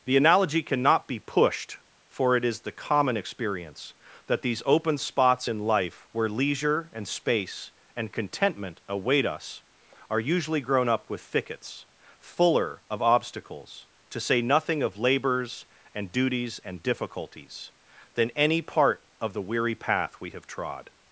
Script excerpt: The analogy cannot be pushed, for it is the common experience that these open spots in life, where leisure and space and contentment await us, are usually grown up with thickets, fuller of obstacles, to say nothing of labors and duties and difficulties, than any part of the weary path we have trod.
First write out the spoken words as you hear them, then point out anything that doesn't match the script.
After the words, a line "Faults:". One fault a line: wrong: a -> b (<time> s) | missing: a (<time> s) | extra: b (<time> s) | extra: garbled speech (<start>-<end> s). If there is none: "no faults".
The analogy cannot be pushed, for it is the common experience that these open spots in life, where leisure and space and contentment await us, are usually grown up with thickets, fuller of obstacles, to say nothing of labors and duties and difficulties, than any part of the weary path we have trod.
Faults:
no faults